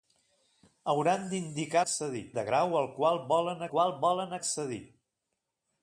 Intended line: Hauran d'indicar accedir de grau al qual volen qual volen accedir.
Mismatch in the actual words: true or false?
false